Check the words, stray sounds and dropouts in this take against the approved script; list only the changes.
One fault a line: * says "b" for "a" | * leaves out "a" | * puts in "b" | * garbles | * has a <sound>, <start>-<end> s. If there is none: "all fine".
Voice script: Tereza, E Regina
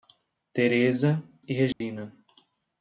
* has a dropout, 1.7-1.8 s